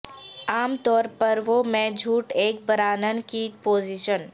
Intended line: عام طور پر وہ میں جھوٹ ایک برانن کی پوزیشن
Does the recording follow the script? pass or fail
pass